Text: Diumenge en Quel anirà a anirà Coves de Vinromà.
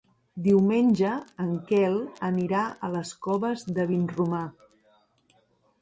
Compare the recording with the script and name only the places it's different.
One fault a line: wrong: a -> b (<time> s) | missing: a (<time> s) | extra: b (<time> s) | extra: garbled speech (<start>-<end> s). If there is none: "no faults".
wrong: anirà -> les (3.0 s)